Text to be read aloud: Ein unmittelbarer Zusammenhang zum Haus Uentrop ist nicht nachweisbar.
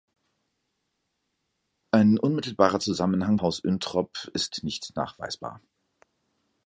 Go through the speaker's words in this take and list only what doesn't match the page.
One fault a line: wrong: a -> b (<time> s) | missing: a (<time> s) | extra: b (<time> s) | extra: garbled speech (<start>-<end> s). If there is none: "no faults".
missing: zum (3.4 s)